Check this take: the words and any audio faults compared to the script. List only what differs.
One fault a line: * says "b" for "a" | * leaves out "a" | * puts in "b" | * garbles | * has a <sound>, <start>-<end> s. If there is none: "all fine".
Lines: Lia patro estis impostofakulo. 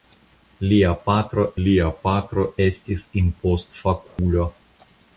* puts in "lia patro"
* has a dropout, 4.1-4.2 s